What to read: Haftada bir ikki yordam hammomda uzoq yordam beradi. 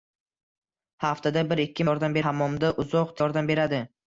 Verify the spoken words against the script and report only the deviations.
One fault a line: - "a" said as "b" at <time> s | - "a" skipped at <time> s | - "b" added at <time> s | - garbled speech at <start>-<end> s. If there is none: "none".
none